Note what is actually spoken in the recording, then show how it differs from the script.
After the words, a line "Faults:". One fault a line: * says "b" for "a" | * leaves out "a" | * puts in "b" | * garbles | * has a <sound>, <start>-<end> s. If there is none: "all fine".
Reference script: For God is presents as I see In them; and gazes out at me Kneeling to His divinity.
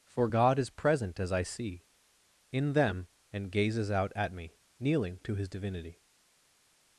For God is present as I see In them; and gazes out at me Kneeling to His divinity.
Faults:
* says "present" for "presents"